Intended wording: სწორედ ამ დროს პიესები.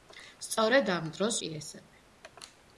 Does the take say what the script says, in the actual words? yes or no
yes